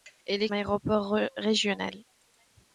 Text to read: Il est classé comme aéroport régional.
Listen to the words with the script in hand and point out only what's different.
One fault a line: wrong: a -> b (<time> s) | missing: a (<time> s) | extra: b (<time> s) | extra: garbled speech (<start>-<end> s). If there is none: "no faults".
missing: classé comme (0.5 s)